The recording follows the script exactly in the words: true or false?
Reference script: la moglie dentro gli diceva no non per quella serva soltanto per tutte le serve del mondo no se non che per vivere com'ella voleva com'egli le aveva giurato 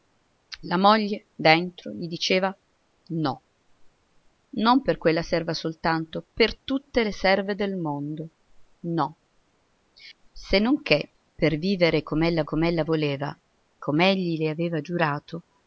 false